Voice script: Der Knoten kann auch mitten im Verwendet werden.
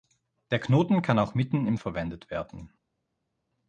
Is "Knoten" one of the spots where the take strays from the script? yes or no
no